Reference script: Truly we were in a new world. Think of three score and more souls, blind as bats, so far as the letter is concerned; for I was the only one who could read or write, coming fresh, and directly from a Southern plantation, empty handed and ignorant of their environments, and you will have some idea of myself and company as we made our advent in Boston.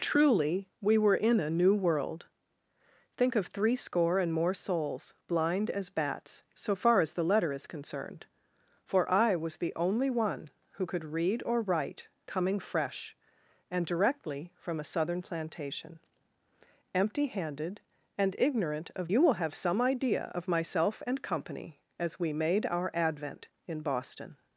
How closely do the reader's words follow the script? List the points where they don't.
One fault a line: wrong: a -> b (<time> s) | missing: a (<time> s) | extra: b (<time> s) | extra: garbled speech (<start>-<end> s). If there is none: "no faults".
missing: their environments and (19.1 s)